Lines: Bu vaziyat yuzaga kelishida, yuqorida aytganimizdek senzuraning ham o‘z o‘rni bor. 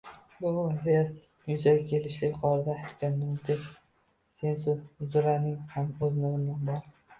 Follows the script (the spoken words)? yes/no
yes